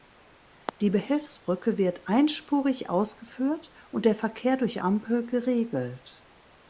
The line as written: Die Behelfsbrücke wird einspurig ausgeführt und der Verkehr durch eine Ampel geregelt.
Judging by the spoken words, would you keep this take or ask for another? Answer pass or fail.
fail